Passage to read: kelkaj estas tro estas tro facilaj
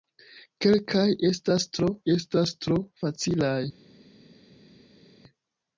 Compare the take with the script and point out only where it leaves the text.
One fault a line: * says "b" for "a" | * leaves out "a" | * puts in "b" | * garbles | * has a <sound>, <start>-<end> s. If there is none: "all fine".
all fine